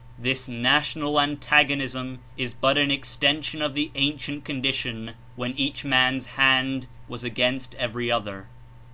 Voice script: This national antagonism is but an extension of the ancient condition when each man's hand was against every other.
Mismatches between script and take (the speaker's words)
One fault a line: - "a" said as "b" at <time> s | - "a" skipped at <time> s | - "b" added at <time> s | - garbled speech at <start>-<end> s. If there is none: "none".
none